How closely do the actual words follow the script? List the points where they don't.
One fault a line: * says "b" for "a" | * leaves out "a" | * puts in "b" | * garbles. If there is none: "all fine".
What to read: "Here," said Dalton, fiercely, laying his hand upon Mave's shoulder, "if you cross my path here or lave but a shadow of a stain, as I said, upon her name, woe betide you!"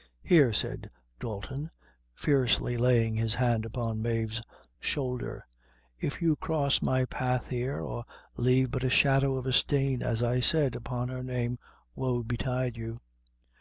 all fine